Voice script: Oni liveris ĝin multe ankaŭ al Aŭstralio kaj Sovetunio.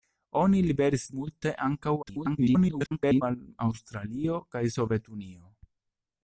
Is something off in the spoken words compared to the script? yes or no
yes